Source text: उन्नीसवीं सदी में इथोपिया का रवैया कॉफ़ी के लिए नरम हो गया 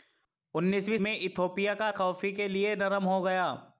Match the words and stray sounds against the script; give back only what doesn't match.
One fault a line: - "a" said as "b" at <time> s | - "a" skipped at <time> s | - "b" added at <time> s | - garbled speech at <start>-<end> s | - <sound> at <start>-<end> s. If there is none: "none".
- "सदी" skipped at 1.0 s
- "रवैया" skipped at 1.9 s